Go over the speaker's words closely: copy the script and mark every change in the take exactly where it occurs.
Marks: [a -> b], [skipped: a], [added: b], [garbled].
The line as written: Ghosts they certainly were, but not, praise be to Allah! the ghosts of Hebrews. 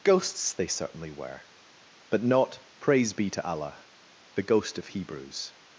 Ghosts they certainly were, but not, praise be to Allah! the [ghosts -> ghost] of Hebrews.